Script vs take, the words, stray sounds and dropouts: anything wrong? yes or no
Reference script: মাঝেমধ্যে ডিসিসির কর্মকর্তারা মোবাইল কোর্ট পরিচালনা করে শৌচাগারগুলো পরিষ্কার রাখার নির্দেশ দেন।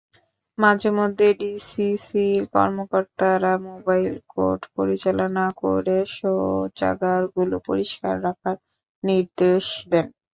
no